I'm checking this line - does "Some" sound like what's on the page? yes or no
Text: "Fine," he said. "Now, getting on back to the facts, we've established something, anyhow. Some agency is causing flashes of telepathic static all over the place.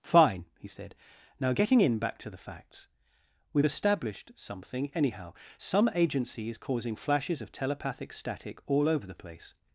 yes